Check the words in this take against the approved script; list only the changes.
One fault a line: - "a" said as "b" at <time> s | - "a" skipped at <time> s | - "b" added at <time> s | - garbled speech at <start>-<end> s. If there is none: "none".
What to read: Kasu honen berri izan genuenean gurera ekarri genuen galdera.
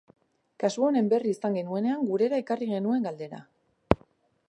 none